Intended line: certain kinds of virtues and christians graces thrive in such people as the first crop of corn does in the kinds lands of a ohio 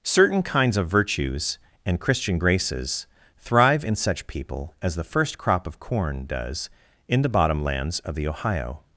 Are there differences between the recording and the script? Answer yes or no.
yes